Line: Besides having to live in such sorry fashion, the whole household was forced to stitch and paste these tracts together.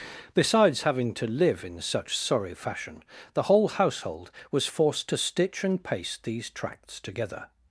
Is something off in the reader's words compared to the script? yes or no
no